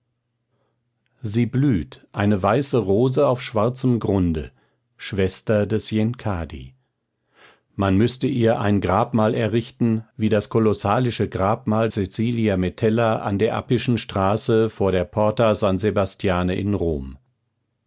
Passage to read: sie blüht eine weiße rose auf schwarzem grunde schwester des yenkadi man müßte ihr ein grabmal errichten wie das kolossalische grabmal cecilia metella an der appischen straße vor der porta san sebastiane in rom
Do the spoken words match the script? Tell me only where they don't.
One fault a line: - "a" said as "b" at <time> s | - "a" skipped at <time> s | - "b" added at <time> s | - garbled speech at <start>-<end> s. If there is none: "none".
none